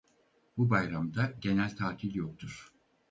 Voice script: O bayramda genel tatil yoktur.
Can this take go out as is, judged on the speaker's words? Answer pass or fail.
fail